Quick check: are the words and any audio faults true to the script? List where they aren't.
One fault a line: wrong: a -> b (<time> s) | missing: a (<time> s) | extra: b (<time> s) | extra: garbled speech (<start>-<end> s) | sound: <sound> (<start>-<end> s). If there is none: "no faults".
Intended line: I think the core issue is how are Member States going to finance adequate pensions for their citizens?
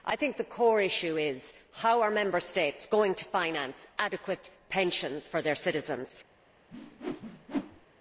sound: whoosh (6.7-7.9 s)